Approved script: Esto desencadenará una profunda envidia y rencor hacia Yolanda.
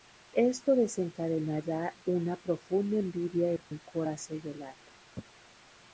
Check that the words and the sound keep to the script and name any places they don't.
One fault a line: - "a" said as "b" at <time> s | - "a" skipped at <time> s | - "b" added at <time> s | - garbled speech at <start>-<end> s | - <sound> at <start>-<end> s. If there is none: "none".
- dropout at 3.6-3.7 s